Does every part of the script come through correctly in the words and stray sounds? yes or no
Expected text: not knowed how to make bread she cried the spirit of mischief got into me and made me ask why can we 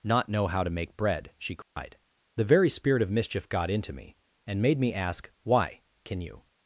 no